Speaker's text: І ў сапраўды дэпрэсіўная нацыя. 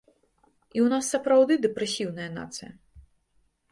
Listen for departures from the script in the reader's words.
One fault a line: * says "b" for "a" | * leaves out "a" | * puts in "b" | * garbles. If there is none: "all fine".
* puts in "нас"